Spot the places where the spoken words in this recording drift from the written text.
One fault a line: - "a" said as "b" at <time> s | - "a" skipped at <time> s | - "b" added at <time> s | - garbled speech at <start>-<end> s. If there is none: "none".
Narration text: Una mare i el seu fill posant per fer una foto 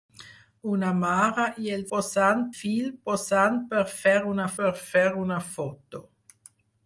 - "seu" said as "posant" at 2.0 s
- "per fer una" added at 4.6 s